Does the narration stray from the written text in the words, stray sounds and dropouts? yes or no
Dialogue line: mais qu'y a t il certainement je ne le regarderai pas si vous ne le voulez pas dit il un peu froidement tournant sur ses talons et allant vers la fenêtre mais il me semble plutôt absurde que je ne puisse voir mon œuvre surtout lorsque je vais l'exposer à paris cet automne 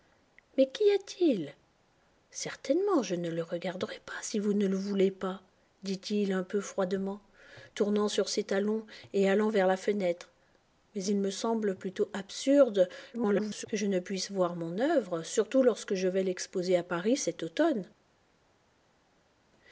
yes